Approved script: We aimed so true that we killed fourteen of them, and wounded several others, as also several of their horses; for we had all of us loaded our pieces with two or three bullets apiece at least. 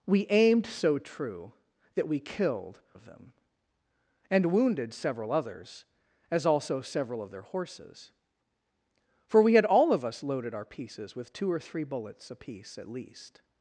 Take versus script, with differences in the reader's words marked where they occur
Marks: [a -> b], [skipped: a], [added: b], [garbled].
We aimed so true that we killed [skipped: fourteen] of them, and wounded several others, as also several of their horses; for we had all of us loaded our pieces with two or three bullets apiece at least.